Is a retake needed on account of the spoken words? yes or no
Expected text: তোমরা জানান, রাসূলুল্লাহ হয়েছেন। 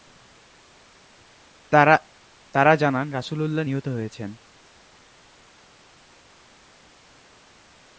yes